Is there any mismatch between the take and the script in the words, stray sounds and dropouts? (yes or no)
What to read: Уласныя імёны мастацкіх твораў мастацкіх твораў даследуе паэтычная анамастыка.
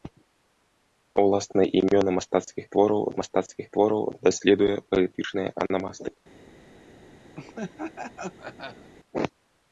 yes